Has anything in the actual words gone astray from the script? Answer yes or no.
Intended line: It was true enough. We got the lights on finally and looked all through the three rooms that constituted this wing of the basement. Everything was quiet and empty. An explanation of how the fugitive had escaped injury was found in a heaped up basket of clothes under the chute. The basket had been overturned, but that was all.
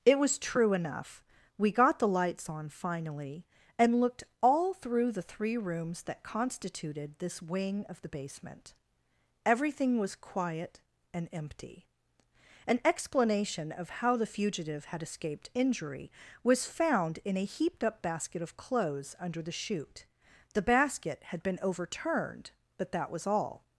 no